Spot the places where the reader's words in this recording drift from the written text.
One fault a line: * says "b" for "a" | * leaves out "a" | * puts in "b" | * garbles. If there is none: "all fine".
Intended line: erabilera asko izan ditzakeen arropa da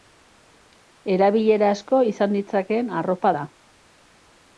all fine